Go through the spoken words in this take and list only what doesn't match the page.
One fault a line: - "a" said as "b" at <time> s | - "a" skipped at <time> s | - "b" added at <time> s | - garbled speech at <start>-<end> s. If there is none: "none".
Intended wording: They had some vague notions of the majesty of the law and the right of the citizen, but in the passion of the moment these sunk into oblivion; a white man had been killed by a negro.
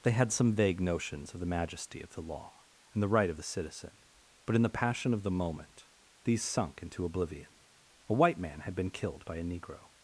none